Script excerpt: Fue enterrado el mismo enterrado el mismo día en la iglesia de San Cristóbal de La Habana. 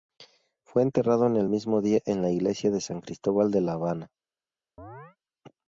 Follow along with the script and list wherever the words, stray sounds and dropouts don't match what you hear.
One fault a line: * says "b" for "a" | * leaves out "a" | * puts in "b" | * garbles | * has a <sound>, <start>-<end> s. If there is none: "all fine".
* leaves out "enterrado el mismo"
* has a chirp, 4.8-5.2 s